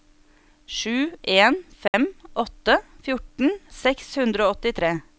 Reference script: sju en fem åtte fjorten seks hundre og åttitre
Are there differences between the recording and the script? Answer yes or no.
no